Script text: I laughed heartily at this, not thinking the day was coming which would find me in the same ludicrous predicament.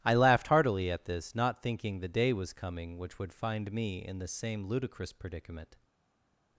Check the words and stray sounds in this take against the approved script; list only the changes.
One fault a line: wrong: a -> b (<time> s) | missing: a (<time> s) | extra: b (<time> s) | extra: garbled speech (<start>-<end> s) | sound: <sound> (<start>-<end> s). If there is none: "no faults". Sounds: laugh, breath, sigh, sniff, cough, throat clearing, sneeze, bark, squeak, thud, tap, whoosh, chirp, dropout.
no faults